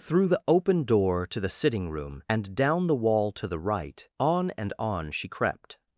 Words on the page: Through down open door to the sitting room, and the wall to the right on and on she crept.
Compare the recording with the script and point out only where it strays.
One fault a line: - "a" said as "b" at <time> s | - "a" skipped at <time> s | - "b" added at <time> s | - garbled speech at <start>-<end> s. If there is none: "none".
- "down" said as "the" at 0.3 s
- "down" added at 2.5 s